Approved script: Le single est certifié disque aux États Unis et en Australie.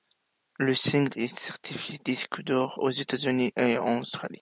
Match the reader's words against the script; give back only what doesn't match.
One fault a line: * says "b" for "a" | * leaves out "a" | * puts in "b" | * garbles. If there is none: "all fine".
* puts in "d'or"